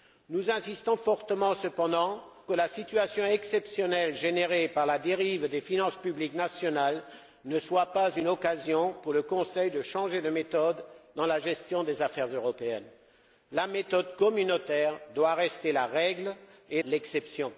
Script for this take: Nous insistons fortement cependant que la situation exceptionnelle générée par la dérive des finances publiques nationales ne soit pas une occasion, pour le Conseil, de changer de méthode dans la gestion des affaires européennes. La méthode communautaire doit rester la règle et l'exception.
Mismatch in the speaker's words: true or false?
false